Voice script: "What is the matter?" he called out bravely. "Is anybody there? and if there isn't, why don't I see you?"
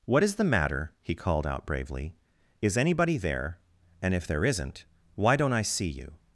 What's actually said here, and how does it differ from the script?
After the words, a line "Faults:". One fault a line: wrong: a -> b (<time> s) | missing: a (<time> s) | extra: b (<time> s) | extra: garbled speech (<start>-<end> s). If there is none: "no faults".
"What is the matter?" he called out bravely. "Is anybody there? and if there isn't, why don't I see you?"
Faults:
no faults